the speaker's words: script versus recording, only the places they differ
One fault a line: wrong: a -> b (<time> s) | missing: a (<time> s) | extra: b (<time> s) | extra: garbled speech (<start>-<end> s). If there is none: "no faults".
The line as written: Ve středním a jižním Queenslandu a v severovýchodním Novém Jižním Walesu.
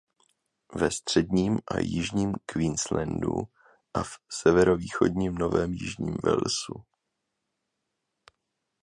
no faults